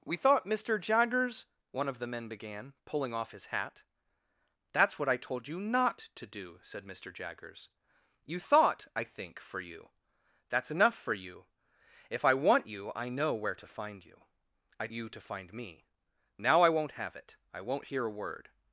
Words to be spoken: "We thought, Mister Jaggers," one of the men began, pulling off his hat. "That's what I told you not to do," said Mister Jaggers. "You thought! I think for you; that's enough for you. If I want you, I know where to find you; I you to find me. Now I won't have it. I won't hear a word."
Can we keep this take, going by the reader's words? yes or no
yes